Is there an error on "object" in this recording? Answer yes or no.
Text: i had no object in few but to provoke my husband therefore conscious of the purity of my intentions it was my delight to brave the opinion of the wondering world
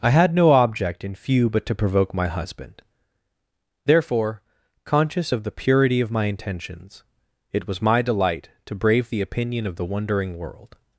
no